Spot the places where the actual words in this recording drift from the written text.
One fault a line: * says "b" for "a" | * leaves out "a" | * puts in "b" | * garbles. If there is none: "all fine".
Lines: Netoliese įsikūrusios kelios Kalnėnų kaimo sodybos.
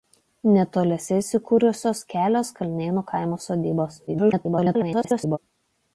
* garbles